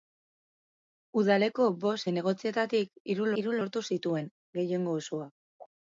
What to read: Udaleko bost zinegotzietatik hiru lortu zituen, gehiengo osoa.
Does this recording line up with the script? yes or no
no